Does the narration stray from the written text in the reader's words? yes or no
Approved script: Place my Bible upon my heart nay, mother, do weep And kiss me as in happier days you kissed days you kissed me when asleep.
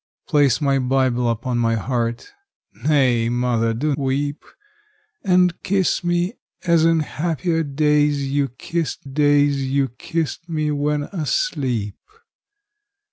no